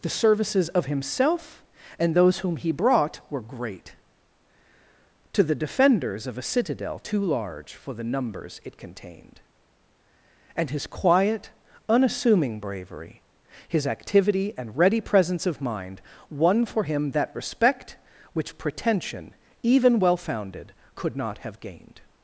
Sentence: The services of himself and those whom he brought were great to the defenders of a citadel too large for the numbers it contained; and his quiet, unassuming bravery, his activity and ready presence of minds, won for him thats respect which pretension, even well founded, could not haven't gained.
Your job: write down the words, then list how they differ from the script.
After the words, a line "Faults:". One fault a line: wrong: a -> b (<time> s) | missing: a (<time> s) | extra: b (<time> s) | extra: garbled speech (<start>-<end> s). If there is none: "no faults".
The services of himself and those whom he brought were great to the defenders of a citadel too large for the numbers it contained; and his quiet, unassuming bravery, his activity and ready presence of mind, won for him that respect which pretension, even well founded, could not have gained.
Faults:
wrong: minds -> mind (15.6 s)
wrong: thats -> that (17.1 s)
wrong: haven't -> have (21.4 s)